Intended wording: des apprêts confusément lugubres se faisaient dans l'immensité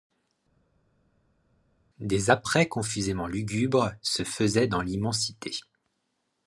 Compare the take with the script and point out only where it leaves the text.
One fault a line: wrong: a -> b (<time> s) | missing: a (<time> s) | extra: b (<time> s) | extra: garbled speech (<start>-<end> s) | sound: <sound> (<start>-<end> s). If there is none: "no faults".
no faults